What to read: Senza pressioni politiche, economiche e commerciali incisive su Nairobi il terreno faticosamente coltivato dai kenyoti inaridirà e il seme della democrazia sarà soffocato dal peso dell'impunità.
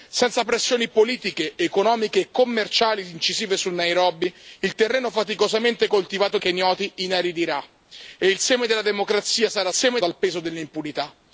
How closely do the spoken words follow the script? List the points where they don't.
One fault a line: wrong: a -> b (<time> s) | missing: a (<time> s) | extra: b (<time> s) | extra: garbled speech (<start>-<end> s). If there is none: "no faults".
missing: dai (6.4 s)
wrong: soffocato -> seme (9.7 s)